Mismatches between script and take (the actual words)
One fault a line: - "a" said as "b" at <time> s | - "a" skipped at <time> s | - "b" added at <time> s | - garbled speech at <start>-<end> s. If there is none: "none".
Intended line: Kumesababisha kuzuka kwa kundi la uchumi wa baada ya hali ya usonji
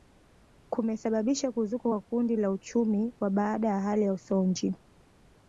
none